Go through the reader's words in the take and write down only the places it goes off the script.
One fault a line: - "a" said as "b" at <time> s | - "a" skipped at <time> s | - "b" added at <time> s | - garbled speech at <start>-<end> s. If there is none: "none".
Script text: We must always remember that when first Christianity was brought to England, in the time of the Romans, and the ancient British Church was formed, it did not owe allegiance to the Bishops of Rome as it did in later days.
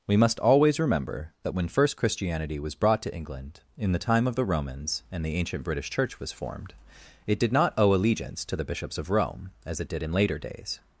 none